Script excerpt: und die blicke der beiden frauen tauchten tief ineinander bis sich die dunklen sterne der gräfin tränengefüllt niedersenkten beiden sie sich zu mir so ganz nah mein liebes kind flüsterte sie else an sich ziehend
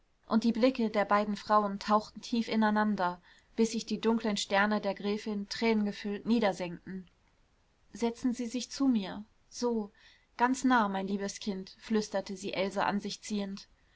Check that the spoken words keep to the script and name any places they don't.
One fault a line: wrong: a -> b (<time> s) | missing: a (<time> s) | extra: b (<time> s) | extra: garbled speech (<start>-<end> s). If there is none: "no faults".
wrong: beiden -> setzen (7.9 s)